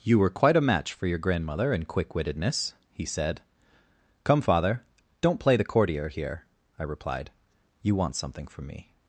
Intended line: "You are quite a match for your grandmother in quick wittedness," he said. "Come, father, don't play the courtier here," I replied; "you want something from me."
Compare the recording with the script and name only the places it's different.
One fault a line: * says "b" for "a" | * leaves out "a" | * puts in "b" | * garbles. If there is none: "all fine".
* says "were" for "are"